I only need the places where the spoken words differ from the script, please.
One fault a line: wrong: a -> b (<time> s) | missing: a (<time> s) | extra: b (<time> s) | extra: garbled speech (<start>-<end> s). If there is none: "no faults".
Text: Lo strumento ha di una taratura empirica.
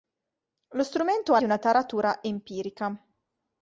no faults